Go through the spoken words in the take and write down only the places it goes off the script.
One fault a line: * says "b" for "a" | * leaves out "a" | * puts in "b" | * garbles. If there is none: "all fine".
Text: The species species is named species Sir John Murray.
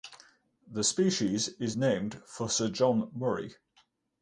* leaves out "species"
* says "for" for "species"